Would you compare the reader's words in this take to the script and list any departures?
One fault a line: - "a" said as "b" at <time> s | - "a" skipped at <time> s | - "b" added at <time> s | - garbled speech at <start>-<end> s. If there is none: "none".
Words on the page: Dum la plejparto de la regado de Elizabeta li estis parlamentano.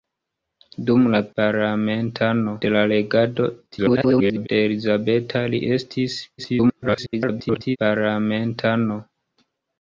- "plejparto" said as "parlamentano" at 1.4 s
- garbled speech at 3.7-4.5 s
- garbled speech at 6.4-7.8 s